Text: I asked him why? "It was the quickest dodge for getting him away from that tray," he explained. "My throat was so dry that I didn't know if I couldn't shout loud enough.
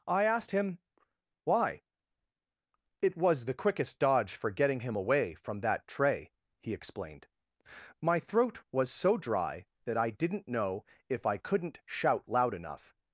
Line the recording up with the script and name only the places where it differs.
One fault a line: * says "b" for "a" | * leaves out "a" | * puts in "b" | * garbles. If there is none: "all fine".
all fine